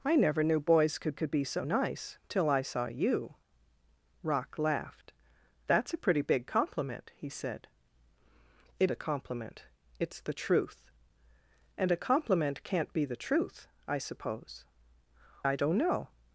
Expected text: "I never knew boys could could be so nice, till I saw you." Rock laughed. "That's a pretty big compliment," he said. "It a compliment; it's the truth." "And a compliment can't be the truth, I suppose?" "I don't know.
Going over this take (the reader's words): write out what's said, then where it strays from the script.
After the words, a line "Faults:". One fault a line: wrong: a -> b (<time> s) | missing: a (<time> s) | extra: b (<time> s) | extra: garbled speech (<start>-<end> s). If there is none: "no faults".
"I never knew boys could could be so nice, till I saw you." Rock laughed. "That's a pretty big compliment," he said. "It a compliment; it's the truth." "And a compliment can't be the truth, I suppose?" "I don't know.
Faults:
no faults